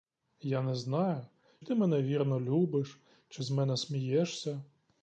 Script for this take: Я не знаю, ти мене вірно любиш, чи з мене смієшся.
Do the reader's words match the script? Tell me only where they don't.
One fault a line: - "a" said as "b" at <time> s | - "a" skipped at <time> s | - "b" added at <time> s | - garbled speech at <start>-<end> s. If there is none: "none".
none